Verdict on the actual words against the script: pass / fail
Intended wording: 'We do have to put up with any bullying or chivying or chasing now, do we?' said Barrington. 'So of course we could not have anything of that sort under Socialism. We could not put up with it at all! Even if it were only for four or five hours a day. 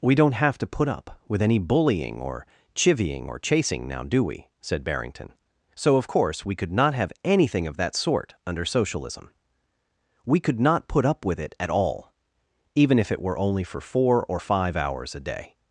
fail